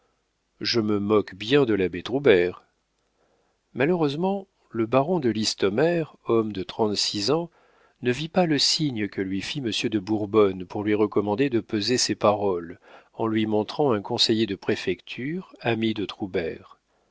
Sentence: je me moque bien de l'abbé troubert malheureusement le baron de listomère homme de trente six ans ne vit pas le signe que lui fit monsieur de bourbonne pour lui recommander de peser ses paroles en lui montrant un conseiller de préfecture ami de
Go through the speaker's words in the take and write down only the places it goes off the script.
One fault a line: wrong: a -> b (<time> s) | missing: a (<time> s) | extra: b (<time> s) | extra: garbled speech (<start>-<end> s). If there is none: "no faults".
no faults